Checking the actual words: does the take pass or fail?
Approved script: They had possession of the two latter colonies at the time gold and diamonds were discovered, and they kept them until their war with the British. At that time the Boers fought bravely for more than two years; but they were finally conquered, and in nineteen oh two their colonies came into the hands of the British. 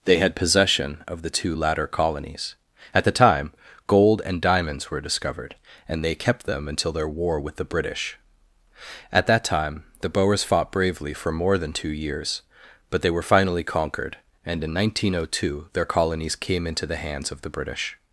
pass